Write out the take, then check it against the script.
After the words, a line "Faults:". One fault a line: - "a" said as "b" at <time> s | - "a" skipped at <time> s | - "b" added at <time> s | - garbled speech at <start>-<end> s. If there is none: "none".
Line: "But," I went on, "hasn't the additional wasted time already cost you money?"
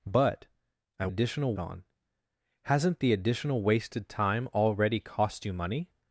"But," I additional on, "hasn't the additional wasted time already cost you money?"
Faults:
- "went" said as "additional" at 1.1 s